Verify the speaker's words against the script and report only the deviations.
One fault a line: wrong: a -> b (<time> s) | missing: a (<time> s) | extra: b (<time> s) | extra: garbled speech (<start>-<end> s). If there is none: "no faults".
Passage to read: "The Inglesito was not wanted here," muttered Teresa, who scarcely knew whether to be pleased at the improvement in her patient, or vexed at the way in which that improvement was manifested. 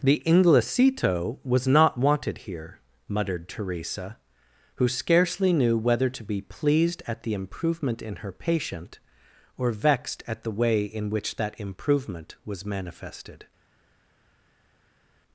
no faults